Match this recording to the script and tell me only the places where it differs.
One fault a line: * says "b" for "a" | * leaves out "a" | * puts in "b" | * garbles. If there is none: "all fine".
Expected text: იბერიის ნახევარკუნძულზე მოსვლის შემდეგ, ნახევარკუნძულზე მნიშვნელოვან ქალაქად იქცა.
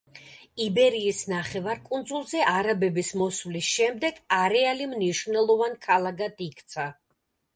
* puts in "არაბების"
* says "არეალი" for "ნახევარკუნძულზე"